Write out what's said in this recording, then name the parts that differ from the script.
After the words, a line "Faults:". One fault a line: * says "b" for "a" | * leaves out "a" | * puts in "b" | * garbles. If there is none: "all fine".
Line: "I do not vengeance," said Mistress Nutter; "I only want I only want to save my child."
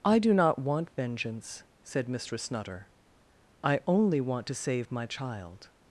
"I do not want vengeance," said Mistress Nutter; "I only want to save my child."
Faults:
* puts in "want"
* leaves out "I only want"